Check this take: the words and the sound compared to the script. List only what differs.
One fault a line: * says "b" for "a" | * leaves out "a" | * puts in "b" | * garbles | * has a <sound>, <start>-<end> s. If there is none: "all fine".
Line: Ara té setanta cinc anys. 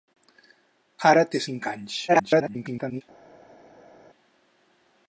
* leaves out "setanta"
* garbles